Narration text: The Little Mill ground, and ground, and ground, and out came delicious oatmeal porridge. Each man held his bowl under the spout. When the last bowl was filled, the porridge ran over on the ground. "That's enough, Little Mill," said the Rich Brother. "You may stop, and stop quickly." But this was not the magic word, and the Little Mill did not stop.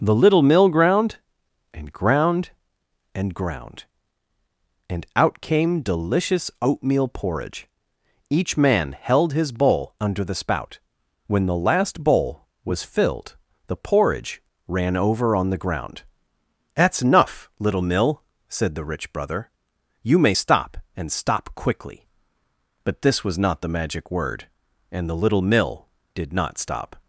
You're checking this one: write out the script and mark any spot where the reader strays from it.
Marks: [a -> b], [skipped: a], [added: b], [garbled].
The Little Mill ground, and ground, and ground, and out came delicious oatmeal porridge. Each man held his bowl under the spout. When the last bowl was filled, the porridge ran over on the ground. "That's enough, Little Mill," said the Rich Brother. "You may stop, and stop quickly." But this was not the magic word, and the Little Mill did not stop.